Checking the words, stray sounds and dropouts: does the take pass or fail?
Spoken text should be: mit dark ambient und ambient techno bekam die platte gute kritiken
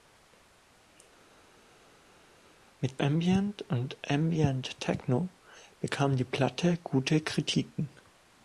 fail